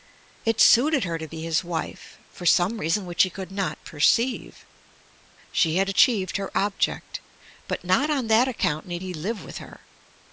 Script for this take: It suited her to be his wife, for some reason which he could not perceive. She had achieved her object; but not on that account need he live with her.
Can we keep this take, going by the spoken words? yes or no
yes